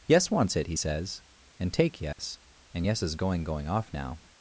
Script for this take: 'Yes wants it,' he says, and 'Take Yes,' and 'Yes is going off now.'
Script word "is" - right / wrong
right